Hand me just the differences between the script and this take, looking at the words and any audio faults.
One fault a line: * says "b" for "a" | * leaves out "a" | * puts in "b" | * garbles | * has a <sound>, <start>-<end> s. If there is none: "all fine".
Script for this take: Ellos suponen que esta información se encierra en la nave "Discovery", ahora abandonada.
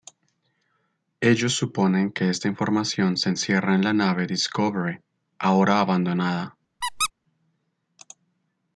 * has a squeak, 6.8-7.1 s